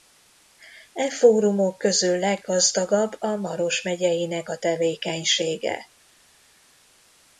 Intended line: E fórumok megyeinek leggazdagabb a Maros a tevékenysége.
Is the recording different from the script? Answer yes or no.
yes